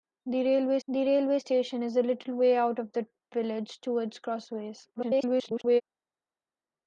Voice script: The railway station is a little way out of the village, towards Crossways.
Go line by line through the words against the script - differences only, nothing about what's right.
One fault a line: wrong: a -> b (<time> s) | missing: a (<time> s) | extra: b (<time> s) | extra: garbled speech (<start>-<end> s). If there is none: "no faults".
extra: the railway (0.9 s)
extra: garbled speech (4.9-5.8 s)